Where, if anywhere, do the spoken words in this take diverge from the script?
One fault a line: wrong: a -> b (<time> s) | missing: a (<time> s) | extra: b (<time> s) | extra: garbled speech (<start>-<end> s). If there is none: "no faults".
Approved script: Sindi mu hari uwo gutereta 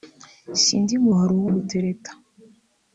no faults